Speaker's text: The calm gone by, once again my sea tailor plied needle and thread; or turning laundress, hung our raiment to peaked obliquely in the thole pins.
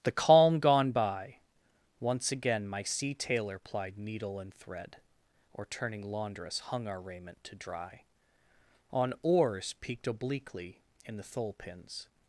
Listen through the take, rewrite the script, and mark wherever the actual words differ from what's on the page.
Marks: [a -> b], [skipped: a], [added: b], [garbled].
The calm gone by, once again my sea tailor plied needle and thread; or turning laundress, hung our raiment to [added: dry on oars] peaked obliquely in the thole pins.